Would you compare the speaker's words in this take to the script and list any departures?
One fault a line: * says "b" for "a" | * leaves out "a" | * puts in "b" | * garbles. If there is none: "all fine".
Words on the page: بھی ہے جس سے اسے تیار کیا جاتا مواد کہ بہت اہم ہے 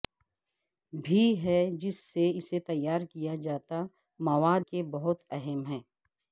all fine